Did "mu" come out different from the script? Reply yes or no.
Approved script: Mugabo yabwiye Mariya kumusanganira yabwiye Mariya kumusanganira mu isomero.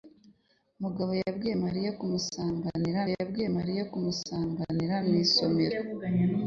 no